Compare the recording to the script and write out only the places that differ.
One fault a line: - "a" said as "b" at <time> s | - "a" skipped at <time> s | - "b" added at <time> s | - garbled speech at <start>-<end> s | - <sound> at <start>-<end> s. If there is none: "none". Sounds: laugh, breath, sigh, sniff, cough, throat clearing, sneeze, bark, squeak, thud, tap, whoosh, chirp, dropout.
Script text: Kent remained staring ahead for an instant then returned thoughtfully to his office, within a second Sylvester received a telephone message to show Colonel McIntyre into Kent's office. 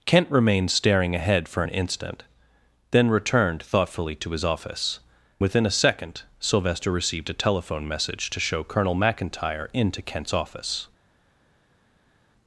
none